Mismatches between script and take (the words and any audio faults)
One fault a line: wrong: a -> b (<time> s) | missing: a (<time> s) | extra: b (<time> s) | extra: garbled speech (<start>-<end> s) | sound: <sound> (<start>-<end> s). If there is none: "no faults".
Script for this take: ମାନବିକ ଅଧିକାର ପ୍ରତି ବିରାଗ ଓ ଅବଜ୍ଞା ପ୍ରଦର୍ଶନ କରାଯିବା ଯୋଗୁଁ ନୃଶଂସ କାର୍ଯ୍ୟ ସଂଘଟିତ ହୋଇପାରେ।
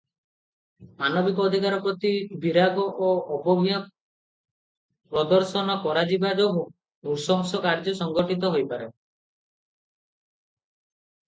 no faults